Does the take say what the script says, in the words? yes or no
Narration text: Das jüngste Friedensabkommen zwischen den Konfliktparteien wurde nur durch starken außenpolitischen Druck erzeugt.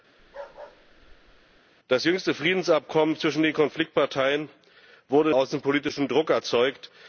no